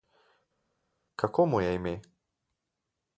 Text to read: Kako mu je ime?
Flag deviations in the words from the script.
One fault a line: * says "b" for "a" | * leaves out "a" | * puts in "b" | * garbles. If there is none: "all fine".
all fine